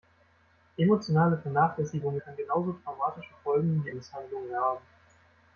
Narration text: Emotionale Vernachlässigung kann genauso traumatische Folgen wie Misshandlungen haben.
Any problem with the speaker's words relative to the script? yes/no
no